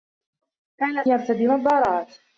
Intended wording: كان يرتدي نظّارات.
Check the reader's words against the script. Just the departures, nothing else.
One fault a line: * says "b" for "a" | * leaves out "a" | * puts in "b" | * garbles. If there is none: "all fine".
all fine